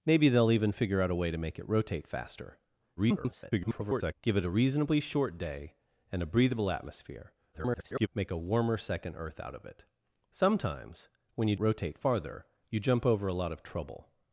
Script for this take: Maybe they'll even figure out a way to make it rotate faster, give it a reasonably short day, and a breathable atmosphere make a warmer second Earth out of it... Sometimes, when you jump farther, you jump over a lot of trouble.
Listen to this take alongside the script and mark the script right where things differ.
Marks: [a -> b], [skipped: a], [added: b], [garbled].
Maybe they'll even figure out a way to make it rotate faster, [garbled] give it a reasonably short day, and a breathable atmosphere [garbled] make a warmer second Earth out of it... Sometimes, when you [jump -> rotate] farther, you jump over a lot of trouble.